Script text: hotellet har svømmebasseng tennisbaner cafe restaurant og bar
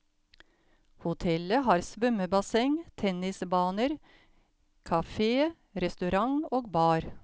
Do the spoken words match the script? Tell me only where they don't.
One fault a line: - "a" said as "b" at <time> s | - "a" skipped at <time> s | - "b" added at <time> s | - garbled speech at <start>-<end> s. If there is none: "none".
none